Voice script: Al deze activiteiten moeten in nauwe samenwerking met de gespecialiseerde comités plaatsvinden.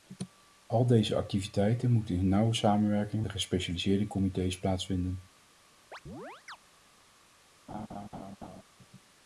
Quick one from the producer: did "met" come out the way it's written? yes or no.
no